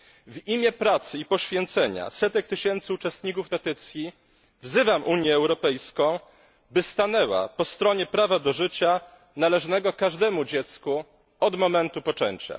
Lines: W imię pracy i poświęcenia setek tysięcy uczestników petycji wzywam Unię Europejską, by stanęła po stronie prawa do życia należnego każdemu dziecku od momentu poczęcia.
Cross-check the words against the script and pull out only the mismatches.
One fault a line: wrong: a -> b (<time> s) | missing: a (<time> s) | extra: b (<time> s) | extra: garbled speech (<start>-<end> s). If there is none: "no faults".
no faults